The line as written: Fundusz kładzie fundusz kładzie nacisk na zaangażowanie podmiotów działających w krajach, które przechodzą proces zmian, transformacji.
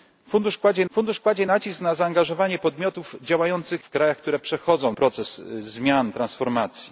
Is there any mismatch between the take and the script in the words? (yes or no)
no